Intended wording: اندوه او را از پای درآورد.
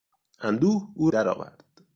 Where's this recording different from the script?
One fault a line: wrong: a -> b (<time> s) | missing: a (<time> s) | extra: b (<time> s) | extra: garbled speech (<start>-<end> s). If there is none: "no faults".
missing: را از پای (1.1 s)